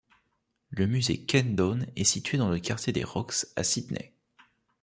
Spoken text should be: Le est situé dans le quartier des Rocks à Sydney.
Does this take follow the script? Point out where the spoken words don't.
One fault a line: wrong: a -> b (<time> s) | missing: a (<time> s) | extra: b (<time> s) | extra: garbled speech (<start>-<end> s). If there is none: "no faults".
extra: musée Ken Done (0.8 s)